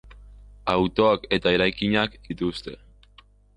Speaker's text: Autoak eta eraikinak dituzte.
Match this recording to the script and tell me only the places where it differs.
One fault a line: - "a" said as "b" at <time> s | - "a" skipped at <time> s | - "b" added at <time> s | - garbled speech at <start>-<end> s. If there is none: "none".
none